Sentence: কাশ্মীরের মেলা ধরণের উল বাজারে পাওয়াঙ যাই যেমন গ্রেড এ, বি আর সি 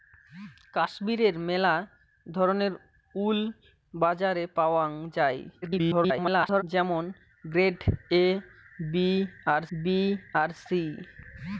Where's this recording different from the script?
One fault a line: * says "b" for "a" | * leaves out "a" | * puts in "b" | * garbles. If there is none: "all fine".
* garbles
* puts in "বি আর"